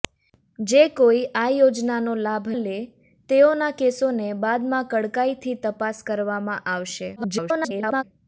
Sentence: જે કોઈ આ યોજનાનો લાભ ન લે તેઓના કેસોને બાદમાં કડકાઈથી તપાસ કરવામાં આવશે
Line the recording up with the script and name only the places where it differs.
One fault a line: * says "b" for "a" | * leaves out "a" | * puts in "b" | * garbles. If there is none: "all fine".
* leaves out "ન"
* garbles